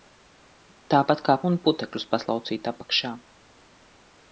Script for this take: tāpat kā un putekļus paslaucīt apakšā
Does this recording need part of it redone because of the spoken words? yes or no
no